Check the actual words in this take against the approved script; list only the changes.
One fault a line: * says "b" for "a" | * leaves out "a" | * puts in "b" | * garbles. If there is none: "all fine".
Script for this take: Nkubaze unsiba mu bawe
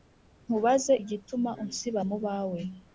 * puts in "igituma"